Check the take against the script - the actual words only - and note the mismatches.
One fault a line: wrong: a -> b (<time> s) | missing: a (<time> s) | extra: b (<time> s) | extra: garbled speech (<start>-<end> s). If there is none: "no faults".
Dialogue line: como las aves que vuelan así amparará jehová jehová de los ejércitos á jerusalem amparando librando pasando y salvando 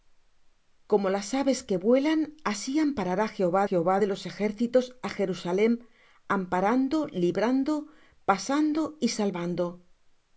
no faults